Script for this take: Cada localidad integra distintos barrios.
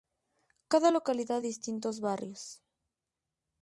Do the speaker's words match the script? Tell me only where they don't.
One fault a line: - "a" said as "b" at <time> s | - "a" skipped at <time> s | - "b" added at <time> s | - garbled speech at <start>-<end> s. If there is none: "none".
- "integra" skipped at 1.4 s